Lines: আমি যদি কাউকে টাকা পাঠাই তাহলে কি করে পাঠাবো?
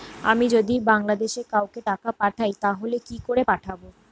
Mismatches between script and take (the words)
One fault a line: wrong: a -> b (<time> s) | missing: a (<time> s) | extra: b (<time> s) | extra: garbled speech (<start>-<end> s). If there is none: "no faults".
extra: বাংলাদেশে (0.8 s)